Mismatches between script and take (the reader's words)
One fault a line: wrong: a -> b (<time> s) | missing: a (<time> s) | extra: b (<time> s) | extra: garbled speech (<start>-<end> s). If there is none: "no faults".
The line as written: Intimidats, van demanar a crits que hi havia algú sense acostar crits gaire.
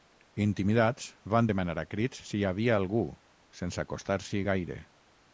wrong: que -> si (2.3 s)
wrong: crits -> s'hi (4.3 s)